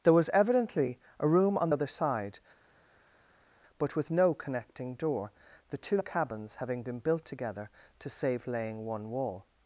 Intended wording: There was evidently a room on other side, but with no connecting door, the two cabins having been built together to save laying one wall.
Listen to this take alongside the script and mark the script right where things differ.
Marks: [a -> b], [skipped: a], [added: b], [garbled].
There was evidently a room on other side, but with no connecting door, the two cabins having been built together to save laying one wall.